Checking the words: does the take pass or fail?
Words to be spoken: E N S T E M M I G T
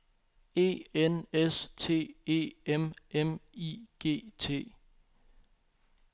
pass